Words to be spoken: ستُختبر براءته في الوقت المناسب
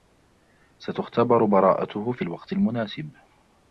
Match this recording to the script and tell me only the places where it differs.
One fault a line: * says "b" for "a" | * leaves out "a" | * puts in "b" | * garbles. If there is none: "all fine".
all fine